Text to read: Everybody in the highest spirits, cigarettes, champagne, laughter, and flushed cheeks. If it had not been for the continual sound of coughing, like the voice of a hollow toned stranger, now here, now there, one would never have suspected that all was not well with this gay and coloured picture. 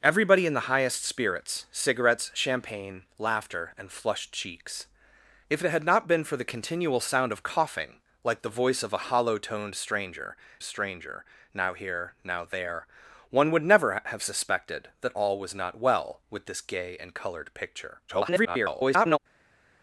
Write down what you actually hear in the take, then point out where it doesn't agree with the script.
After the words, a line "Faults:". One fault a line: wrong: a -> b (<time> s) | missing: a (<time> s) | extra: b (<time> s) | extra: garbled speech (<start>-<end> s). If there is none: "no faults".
Everybody in the highest spirits, cigarettes, champagne, laughter, and flushed cheeks. If it had not been for the continual sound of coughing, like the voice of a hollow toned stranger stranger, now here, now there, one would never have suspected that all was not well with this gay and coloured picture. [garbled]
Faults:
extra: stranger (10.6 s)
extra: garbled speech (18.1-19.2 s)